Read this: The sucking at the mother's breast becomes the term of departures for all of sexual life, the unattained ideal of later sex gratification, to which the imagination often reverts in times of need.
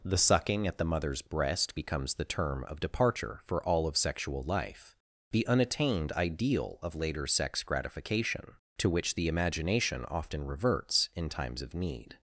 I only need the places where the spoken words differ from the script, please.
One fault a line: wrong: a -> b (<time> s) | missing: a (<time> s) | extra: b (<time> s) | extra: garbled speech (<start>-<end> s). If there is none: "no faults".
wrong: departures -> departure (2.8 s)